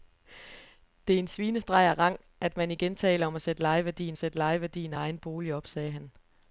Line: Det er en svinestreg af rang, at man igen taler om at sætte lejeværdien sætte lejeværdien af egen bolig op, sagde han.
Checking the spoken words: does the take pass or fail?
pass